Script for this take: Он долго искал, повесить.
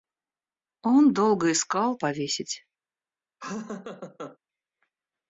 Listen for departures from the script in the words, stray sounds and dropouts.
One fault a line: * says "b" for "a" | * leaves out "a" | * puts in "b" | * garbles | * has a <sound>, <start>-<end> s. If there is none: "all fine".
* has a laugh, 3.4-4.4 s